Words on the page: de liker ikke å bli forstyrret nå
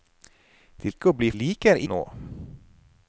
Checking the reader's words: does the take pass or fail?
fail